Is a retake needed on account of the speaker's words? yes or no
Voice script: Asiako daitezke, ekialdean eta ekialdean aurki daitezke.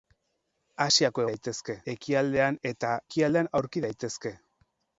no